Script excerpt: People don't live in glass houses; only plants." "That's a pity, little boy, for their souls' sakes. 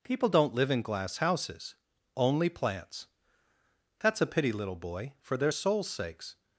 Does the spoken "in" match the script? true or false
true